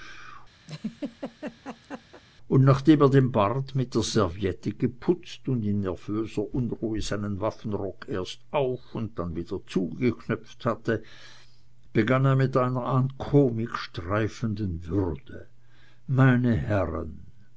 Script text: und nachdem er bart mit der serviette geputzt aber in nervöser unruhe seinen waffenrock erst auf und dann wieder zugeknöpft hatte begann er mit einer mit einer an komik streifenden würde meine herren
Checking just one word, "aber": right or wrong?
wrong